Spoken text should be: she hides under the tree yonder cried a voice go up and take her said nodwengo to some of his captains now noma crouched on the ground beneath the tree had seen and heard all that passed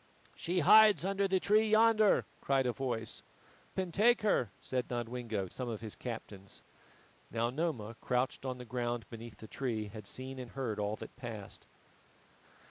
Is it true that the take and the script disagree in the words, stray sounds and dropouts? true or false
true